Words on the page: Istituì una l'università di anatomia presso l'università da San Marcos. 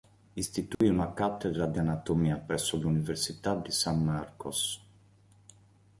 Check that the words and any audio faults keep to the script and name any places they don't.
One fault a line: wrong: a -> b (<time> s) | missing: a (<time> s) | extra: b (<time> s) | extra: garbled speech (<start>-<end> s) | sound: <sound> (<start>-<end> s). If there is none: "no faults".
sound: dropout (0.7-0.8 s)
wrong: l'università -> cattedra (1.1 s)
wrong: da -> di (3.5 s)